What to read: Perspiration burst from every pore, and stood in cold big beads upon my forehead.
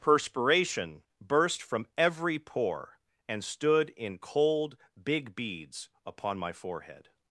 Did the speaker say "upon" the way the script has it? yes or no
yes